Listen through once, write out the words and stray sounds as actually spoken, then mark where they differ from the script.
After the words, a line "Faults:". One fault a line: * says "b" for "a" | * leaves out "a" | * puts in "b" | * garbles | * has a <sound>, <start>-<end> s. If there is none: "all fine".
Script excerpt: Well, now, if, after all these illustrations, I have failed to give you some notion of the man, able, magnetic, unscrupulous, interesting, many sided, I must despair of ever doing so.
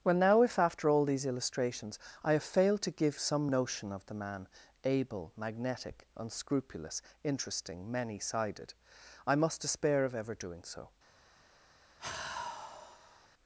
Well, now, if, after all these illustrations, I have failed to give some notion of the man, able, magnetic, unscrupulous, interesting, many sided, I must despair of ever doing so.
Faults:
* leaves out "you"
* has a sigh, 12.0-13.3 s